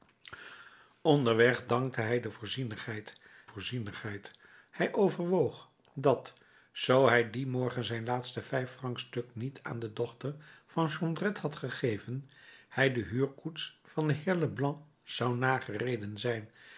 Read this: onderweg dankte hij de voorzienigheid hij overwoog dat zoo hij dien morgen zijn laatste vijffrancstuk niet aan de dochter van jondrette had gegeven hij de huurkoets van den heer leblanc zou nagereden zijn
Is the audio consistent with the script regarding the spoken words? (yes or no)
no